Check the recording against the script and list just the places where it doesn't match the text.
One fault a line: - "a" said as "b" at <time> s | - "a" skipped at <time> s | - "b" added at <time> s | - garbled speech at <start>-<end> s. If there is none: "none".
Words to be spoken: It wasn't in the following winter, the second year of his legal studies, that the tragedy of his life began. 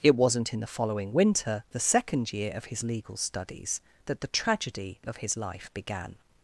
none